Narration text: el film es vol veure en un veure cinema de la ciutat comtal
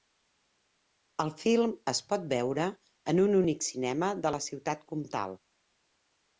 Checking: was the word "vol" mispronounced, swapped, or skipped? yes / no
yes